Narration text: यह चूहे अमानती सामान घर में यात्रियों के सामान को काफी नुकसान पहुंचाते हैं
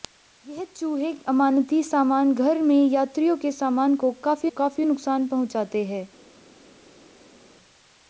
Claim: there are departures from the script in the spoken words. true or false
true